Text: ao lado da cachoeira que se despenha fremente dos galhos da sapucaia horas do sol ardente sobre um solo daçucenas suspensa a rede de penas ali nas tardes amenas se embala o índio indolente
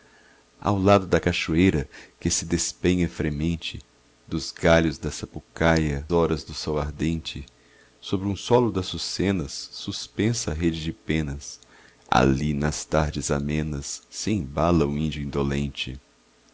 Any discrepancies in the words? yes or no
no